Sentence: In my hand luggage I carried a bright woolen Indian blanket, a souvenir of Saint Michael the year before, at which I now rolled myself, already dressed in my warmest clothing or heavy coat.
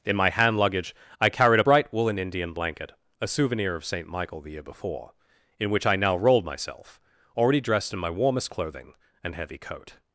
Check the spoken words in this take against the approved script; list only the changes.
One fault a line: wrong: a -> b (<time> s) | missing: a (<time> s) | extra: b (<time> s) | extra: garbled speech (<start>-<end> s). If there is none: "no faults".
wrong: at -> in (5.6 s)
wrong: or -> and (9.2 s)